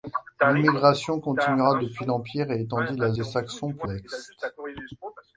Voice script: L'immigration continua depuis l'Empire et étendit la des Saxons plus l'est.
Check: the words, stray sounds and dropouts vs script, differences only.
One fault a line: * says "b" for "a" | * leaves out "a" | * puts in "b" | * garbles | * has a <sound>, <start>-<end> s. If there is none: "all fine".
all fine